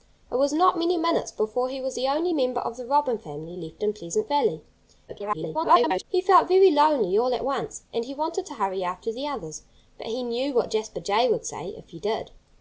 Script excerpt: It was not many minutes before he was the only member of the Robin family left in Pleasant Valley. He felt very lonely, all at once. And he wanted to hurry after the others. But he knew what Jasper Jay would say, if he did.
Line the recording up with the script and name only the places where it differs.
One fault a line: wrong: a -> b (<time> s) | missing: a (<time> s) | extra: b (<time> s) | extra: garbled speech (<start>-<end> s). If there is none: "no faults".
extra: garbled speech (5.1-6.0 s)